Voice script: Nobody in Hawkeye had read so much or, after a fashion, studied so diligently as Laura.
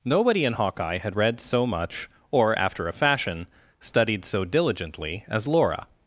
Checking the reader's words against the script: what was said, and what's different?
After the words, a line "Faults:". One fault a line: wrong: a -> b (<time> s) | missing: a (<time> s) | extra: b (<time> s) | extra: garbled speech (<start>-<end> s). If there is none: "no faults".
Nobody in Hawkeye had read so much or, after a fashion, studied so diligently as Laura.
Faults:
no faults